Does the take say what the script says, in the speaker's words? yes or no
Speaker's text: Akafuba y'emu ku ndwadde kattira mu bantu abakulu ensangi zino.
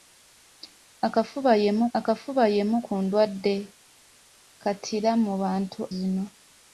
no